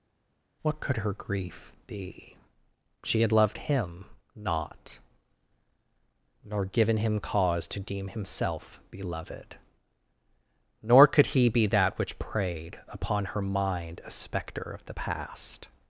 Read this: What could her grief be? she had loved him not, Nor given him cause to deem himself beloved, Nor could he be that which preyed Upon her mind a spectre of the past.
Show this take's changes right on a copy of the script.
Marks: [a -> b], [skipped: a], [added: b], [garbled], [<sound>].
What could her grief be? she had loved him not, Nor given him cause to deem himself beloved, Nor could he be that which preyed Upon her mind a spectre of the past.